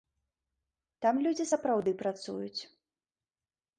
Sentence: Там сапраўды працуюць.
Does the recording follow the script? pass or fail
fail